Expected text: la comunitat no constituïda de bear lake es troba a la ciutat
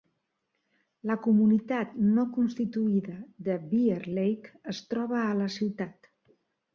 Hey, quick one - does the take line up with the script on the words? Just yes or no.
yes